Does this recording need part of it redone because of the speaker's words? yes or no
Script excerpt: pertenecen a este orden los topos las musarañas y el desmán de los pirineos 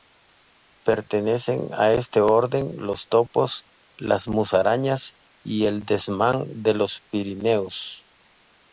no